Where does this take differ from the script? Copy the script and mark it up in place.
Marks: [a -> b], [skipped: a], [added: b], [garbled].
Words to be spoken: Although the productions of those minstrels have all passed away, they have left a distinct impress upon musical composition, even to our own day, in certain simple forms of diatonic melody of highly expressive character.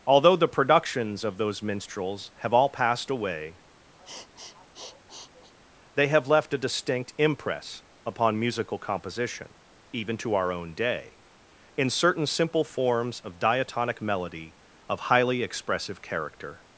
Although the productions of those minstrels have all passed away, they have left a distinct impress upon musical composition, even to our own day, in certain simple forms of diatonic melody of highly expressive character.